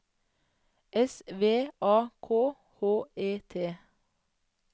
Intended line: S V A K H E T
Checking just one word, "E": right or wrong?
right